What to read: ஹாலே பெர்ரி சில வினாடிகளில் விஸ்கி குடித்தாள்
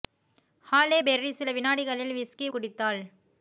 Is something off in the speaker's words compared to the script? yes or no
no